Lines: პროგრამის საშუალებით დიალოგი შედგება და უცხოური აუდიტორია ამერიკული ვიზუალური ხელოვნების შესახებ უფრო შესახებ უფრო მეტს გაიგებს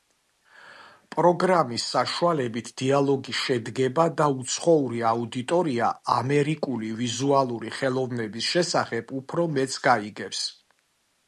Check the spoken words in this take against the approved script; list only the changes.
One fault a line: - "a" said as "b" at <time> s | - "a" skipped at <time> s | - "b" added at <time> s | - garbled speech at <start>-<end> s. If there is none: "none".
- "შესახებ უფრო" skipped at 9.5 s